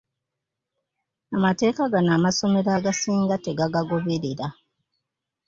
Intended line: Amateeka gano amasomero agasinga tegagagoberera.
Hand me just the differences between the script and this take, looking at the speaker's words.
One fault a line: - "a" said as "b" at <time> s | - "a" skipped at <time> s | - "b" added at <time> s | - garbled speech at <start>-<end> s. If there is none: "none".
none